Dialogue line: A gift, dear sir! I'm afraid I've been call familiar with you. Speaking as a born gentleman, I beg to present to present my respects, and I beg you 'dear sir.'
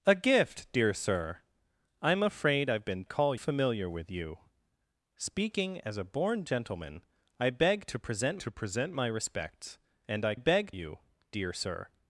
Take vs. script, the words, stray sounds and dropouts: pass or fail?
pass